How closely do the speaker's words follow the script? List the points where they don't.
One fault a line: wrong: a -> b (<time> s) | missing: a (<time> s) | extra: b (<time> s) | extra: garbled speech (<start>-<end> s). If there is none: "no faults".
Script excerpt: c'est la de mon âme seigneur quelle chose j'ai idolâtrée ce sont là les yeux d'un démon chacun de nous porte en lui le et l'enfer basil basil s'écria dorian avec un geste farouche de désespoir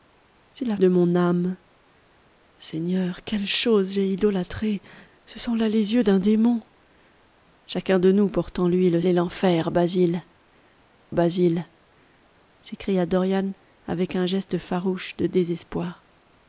no faults